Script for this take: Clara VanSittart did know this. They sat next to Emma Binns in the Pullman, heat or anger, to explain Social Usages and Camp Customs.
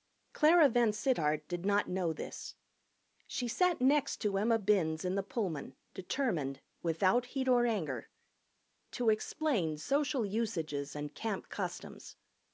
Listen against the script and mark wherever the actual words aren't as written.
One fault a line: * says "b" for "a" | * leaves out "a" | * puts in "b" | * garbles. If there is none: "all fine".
* puts in "not"
* says "She" for "They"
* puts in "determined without"